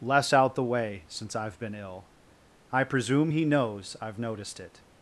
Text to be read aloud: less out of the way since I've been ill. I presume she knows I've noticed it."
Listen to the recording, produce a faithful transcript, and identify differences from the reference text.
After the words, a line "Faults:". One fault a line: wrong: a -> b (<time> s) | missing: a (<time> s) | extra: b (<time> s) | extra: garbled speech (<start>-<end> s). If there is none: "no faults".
less out the way since I've been ill. I presume he knows I've noticed it."
Faults:
missing: of (0.6 s)
wrong: she -> he (3.3 s)